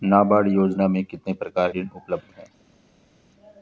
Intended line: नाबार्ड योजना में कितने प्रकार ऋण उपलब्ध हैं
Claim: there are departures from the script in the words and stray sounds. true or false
false